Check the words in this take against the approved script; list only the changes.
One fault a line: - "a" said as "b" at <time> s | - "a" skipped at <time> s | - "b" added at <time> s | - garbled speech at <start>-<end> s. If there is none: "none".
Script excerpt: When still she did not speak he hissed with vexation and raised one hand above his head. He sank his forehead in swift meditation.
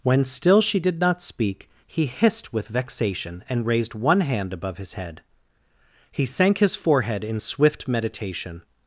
none